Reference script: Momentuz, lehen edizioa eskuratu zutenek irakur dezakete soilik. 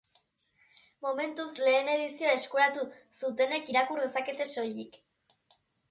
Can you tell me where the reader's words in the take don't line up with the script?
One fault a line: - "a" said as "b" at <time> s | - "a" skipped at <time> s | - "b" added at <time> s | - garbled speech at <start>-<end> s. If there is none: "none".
none